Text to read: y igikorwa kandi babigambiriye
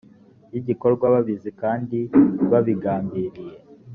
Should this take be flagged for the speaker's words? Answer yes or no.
yes